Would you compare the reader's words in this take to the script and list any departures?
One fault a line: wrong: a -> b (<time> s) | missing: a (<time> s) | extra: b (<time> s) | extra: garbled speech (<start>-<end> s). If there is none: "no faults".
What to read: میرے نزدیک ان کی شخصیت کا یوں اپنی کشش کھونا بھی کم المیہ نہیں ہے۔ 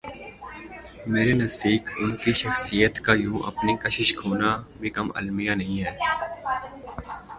no faults